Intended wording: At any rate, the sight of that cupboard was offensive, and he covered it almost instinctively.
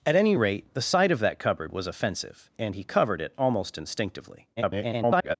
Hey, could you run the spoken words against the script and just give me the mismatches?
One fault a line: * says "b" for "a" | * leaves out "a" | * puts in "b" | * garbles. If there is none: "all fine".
* garbles